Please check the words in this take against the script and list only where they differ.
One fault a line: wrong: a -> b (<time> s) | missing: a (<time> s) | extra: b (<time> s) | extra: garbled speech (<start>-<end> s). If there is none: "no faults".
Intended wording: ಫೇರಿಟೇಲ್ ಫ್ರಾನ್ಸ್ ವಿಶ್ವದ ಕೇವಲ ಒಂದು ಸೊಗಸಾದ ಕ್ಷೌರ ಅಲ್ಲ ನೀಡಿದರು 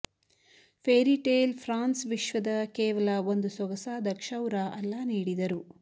no faults